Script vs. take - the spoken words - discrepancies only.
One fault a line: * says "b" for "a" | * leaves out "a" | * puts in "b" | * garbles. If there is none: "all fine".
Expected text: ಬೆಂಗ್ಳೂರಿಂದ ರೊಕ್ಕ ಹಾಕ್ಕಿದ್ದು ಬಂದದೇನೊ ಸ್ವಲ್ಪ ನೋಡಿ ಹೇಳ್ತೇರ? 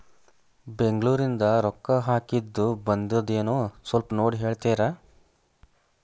all fine